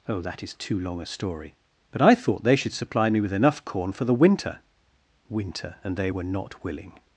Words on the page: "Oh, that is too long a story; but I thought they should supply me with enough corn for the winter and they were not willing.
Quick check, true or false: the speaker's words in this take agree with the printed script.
false